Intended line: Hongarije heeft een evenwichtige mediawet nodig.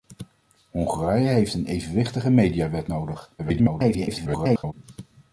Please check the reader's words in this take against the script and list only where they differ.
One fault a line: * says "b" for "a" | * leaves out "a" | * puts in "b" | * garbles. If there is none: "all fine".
* garbles